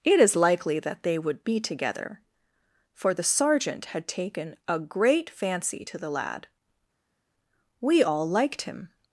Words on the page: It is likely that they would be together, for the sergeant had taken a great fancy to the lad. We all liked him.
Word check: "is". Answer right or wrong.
right